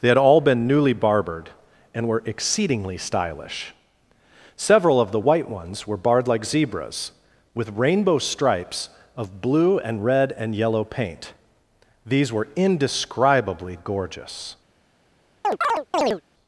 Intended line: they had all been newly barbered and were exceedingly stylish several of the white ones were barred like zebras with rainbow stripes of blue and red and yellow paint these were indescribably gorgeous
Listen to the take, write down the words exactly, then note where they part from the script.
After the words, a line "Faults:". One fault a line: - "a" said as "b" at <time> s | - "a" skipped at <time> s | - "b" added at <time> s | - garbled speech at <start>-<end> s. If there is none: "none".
they had all been newly barbered and were exceedingly stylish several of the white ones were barred like zebras with rainbow stripes of blue and red and yellow paint these were indescribably gorgeous
Faults:
none